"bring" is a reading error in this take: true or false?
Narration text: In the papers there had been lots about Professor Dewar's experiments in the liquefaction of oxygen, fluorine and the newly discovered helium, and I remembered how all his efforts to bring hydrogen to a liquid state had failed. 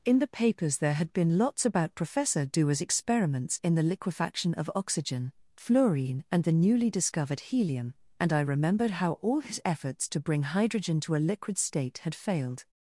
false